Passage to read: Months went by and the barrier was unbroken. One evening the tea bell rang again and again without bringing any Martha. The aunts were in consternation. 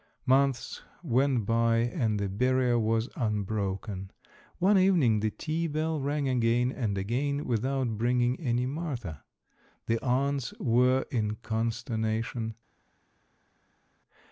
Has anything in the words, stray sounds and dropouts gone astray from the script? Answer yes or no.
no